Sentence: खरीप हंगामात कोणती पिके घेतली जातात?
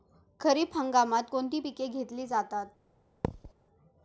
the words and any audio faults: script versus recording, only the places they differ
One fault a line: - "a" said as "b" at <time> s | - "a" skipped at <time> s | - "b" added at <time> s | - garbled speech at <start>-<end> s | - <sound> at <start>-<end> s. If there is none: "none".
- thud at 3.2-3.5 s